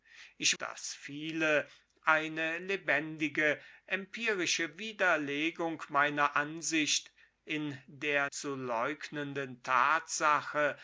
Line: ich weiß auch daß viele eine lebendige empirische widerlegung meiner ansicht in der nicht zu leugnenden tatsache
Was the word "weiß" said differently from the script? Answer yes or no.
yes